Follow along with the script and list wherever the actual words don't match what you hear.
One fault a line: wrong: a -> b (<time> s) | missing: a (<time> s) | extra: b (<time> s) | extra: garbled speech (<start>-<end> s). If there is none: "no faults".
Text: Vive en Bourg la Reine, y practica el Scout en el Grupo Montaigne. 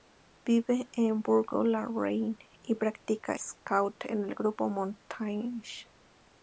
missing: el (3.4 s)